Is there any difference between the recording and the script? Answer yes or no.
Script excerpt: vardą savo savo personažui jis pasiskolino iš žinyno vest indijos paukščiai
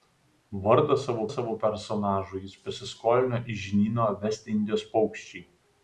no